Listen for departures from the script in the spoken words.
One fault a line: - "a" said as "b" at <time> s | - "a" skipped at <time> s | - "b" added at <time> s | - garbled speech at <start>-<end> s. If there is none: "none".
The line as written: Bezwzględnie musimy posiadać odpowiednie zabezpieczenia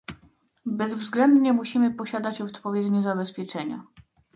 none